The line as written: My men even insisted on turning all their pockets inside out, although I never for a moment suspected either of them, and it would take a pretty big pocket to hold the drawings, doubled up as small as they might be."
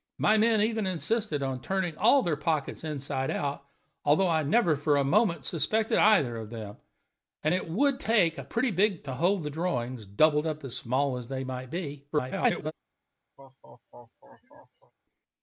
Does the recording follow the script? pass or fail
fail